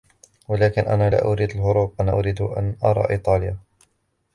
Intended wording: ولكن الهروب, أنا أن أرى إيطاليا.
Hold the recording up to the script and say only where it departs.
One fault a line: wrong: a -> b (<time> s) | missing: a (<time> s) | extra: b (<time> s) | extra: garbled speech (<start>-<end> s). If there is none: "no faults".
extra: أنا لا أريد (0.8 s)
extra: أريد (2.1 s)